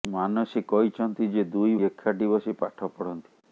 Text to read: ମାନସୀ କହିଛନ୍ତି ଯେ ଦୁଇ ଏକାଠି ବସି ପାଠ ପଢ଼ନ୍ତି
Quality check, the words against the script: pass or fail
pass